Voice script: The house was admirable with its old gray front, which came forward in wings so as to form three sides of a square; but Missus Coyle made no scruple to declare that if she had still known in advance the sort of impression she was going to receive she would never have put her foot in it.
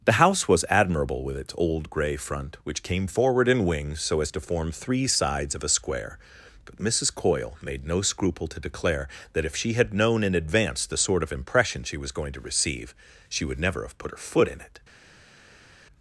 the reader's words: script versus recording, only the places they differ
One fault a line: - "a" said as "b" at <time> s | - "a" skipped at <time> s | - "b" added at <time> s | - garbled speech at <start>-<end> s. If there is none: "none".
- "still" skipped at 9.9 s